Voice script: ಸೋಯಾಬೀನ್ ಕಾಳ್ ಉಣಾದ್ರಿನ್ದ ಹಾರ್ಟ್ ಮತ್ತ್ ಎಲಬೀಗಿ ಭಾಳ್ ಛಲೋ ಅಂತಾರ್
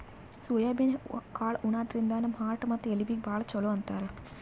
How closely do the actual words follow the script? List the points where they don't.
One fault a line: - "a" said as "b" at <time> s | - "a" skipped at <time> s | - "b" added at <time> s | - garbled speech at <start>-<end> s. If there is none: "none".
- "ನಮ್" added at 2.2 s